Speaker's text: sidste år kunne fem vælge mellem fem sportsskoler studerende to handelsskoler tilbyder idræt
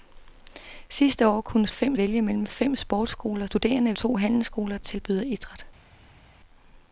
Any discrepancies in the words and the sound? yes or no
no